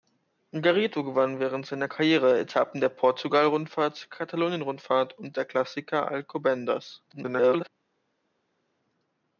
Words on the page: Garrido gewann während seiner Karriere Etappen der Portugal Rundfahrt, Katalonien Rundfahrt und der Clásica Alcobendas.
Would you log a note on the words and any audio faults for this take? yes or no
yes